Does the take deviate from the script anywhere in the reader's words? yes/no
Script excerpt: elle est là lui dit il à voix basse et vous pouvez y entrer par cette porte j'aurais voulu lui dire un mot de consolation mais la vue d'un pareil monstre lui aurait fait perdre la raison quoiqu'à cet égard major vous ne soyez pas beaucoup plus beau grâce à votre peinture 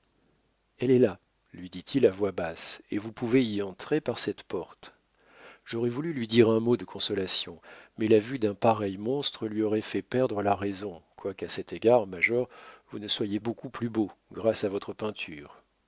yes